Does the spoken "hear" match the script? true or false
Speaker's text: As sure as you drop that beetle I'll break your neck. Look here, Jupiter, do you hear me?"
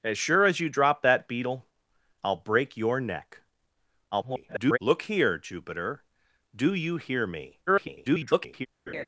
true